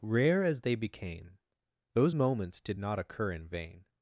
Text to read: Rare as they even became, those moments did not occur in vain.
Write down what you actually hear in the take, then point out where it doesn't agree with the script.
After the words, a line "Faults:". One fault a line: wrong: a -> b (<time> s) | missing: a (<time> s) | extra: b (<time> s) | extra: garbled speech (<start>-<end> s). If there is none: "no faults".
Rare as they became, those moments did not occur in vain.
Faults:
missing: even (0.7 s)